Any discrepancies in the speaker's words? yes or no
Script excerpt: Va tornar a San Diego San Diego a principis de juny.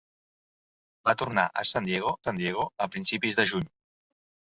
no